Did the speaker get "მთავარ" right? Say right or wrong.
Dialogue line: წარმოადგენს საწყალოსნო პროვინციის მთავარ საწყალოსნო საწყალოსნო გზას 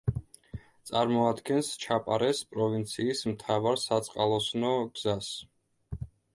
right